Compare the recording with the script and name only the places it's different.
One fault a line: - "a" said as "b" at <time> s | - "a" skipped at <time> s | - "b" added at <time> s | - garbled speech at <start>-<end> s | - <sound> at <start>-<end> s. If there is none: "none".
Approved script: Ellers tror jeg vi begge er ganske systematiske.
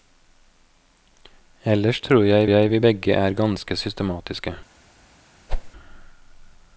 - "jeg" added at 2.4 s
- whoosh at 5.5-5.7 s